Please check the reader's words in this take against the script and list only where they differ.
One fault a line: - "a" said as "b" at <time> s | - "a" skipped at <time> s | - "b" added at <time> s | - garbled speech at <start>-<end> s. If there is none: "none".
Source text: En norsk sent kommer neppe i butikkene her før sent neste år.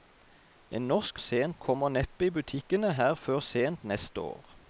none